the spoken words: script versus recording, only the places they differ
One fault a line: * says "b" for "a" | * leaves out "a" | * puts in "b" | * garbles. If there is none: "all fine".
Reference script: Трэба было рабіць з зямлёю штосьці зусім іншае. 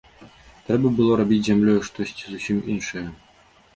all fine